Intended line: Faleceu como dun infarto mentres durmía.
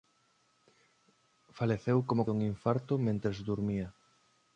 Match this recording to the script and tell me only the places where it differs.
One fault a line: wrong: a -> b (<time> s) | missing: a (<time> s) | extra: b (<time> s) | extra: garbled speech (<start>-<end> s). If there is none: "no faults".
no faults